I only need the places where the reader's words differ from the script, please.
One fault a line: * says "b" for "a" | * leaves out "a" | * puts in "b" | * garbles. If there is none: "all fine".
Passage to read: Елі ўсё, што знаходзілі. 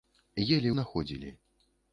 * leaves out "ўсё што"